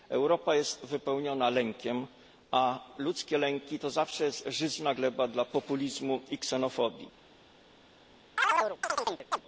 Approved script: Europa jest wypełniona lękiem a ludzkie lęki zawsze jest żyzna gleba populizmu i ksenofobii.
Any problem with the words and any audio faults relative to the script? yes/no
yes